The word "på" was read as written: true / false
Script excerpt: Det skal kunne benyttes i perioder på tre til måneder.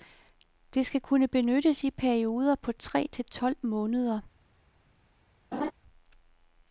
true